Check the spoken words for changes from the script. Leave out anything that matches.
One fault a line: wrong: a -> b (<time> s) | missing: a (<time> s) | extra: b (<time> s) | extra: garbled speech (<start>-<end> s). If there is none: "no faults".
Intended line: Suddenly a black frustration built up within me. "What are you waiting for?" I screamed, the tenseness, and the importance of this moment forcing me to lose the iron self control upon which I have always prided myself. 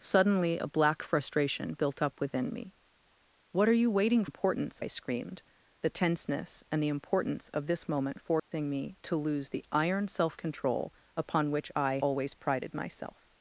wrong: for -> importance (4.2 s)
missing: have (12.0 s)